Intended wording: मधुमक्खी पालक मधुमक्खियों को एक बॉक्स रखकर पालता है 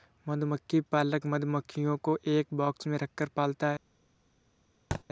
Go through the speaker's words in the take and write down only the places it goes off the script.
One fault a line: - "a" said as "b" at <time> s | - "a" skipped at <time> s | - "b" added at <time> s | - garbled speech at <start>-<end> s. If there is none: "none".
- "में" added at 2.9 s